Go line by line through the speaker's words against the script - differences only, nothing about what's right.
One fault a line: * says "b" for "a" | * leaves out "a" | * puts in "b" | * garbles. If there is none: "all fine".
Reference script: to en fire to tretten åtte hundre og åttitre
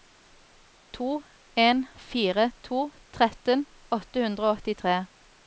all fine